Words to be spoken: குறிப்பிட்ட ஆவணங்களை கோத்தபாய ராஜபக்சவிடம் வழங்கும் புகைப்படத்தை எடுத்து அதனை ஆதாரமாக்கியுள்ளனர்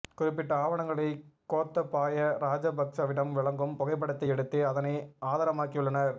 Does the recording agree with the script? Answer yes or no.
yes